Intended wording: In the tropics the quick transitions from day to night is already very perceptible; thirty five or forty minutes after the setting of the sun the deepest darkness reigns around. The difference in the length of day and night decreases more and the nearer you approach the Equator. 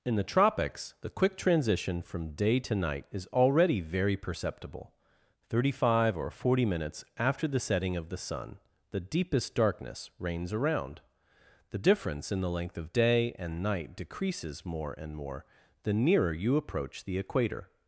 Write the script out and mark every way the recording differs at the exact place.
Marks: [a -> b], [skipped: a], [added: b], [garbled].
In the tropics the quick [transitions -> transition] from day to night is already very perceptible; thirty five or forty minutes after the setting of the sun the deepest darkness reigns around. The difference in the length of day and night decreases more and [added: more] the nearer you approach the Equator.